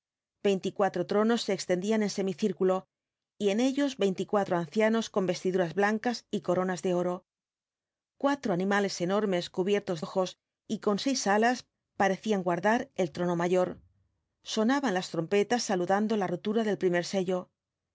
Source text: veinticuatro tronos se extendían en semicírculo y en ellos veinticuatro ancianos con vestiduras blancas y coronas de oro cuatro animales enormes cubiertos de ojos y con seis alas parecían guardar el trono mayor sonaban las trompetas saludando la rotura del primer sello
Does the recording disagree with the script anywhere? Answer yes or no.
yes